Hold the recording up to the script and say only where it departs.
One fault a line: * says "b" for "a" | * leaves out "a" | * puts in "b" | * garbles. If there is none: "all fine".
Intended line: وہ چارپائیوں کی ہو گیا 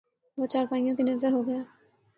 * puts in "نذر"